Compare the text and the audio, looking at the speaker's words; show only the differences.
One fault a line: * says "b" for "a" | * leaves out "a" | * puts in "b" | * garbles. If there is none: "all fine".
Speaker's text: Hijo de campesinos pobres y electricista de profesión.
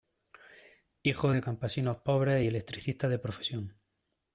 all fine